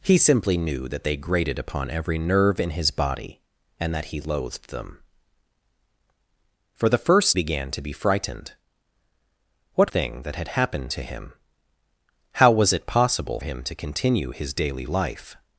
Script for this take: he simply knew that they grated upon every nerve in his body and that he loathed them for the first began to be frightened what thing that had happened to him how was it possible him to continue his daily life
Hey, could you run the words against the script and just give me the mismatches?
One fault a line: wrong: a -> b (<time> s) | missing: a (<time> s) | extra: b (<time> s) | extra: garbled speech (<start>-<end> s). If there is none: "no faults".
no faults